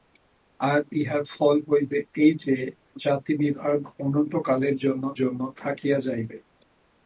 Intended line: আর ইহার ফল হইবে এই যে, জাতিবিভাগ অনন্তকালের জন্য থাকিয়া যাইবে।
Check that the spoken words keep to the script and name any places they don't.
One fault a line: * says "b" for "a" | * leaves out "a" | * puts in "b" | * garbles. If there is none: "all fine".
* puts in "জন্য"